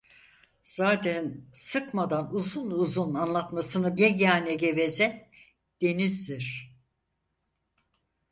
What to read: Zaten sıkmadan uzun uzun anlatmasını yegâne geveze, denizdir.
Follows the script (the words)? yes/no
yes